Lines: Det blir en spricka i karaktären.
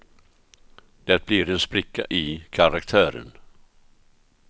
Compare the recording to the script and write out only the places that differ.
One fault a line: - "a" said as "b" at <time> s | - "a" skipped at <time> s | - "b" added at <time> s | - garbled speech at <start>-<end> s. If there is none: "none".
none